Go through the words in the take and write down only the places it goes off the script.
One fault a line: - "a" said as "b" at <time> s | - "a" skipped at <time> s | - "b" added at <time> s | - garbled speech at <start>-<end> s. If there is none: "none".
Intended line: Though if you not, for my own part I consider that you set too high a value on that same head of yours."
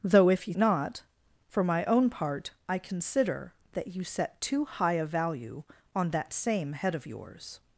none